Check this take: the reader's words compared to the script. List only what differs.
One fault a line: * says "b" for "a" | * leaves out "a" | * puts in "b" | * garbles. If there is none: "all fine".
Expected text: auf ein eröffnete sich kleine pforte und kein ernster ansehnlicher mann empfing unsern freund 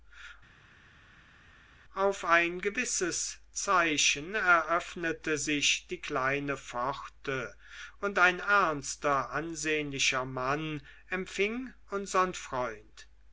* puts in "gewisses zeichen"
* puts in "die"
* says "ein" for "kein"